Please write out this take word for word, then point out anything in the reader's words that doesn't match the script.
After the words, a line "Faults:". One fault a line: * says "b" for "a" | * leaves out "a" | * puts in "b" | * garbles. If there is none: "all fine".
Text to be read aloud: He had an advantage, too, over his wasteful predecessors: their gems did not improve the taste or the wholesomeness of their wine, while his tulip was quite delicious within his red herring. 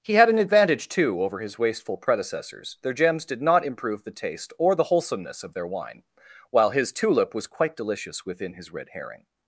He had an advantage, too, over his wasteful predecessors: their gems did not improve the taste or the wholesomeness of their wine, while his tulip was quite delicious within his red herring.
Faults:
all fine